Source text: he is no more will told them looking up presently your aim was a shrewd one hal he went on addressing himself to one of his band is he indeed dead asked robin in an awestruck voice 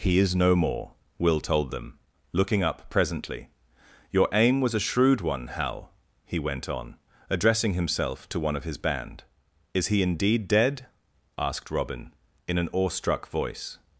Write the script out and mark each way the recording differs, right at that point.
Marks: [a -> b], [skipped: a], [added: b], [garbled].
he is no more will told them looking up presently your aim was a shrewd one hal he went on addressing himself to one of his band is he indeed dead asked robin in an awestruck voice